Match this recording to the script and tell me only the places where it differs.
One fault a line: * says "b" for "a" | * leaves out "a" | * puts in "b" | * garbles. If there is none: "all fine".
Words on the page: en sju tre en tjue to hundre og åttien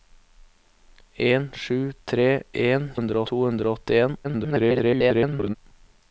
* says "hundre" for "tjue"
* garbles